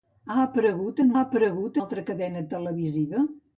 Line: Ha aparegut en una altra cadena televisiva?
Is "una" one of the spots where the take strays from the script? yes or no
yes